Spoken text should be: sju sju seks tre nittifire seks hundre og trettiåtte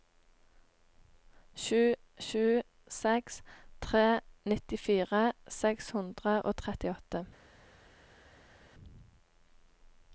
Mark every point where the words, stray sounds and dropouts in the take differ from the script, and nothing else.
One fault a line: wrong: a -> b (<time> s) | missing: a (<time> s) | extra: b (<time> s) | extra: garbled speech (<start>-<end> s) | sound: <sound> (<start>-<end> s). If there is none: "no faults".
no faults